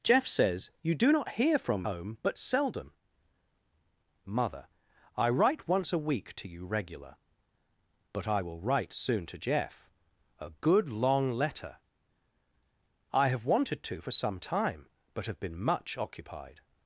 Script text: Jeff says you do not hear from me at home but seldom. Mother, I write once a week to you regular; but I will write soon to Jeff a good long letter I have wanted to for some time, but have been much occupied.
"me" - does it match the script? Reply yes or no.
no